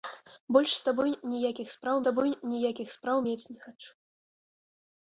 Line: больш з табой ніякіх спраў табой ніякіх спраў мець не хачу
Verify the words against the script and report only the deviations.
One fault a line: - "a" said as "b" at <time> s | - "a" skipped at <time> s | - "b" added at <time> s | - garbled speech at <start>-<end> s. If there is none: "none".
none